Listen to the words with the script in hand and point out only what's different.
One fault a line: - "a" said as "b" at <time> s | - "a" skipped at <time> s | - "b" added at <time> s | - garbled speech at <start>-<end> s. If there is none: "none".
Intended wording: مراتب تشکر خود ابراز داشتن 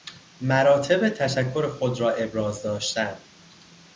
- "را" added at 2.0 s